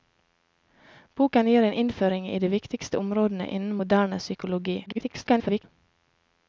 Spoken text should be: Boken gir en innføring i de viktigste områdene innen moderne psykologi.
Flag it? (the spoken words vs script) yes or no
yes